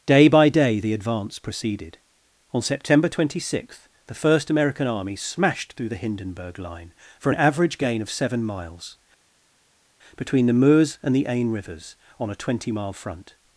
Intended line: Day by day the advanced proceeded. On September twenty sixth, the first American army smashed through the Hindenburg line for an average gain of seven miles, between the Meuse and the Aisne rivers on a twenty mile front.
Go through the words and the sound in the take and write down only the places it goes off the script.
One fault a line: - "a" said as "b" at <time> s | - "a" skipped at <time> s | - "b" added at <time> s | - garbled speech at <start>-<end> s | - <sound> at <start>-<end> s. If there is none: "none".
- "advanced" said as "advance" at 0.9 s